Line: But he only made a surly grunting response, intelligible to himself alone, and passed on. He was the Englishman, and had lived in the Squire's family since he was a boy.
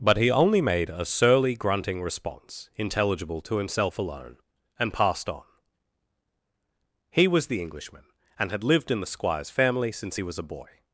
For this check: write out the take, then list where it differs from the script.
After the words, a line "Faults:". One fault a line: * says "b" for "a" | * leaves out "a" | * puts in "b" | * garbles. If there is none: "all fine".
But he only made a surly grunting response, intelligible to himself alone, and passed on. He was the Englishman, and had lived in the Squire's family since he was a boy.
Faults:
all fine